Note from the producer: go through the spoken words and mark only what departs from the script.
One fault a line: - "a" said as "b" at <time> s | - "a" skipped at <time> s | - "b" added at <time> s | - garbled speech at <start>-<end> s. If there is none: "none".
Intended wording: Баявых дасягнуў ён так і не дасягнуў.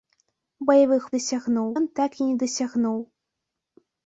none